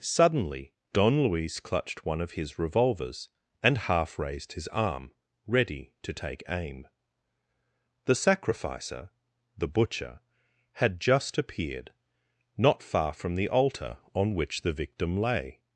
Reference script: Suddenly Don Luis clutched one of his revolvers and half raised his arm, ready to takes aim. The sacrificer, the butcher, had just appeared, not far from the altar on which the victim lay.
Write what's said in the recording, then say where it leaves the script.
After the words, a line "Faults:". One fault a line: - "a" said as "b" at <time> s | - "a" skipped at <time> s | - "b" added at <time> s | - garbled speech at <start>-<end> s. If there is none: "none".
Suddenly Don Luis clutched one of his revolvers and half raised his arm, ready to take aim. The sacrificer, the butcher, had just appeared, not far from the altar on which the victim lay.
Faults:
- "takes" said as "take" at 6.1 s